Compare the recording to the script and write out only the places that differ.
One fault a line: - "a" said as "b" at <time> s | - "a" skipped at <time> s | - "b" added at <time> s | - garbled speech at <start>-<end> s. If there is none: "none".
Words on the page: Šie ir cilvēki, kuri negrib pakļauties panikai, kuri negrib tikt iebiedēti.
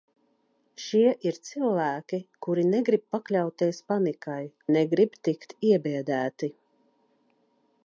- "kuri" skipped at 4.4 s